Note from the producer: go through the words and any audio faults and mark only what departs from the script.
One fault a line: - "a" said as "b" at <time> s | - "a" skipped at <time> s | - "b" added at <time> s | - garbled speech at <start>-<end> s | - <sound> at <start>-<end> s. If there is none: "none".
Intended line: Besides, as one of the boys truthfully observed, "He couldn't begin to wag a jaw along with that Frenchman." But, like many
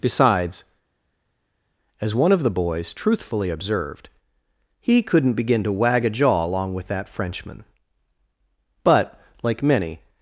none